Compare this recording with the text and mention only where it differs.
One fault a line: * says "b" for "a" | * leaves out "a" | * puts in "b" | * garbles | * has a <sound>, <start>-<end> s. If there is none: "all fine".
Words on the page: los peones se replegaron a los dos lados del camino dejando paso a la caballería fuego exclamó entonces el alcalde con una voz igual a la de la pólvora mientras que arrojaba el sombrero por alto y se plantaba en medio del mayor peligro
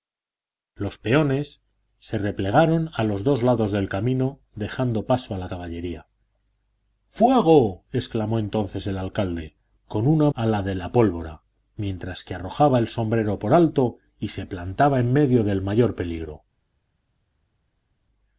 * leaves out "voz igual"